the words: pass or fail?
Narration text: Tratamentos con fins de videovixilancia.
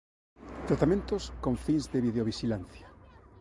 pass